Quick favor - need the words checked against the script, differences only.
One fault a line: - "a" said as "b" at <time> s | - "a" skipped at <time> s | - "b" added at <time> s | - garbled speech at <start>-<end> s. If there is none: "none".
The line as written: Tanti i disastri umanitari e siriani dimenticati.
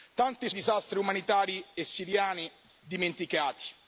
none